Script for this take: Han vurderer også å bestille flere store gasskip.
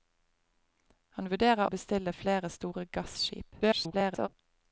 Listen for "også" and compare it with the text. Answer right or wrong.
wrong